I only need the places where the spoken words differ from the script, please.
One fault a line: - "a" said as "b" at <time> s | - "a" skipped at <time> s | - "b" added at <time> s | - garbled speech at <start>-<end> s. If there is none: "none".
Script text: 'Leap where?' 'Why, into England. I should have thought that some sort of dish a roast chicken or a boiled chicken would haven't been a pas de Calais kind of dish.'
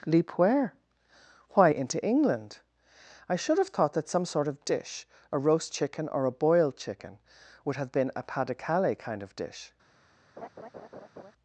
- "haven't" said as "have" at 7.8 s